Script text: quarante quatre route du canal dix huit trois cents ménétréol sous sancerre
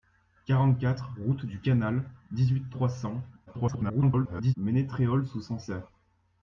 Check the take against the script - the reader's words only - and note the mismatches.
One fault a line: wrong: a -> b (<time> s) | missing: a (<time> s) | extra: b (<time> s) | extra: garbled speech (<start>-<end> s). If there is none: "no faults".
extra: garbled speech (3.5-4.5 s)